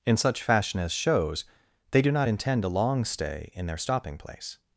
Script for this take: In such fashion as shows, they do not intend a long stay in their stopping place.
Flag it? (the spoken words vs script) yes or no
no